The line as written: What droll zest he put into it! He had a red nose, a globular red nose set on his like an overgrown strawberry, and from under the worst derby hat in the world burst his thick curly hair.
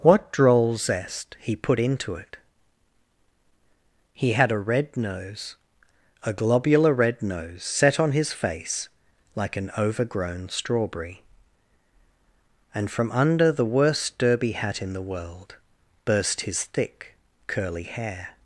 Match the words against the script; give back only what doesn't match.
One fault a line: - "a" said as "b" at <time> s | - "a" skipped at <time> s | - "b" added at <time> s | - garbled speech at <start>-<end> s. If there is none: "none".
- "face" added at 8.3 s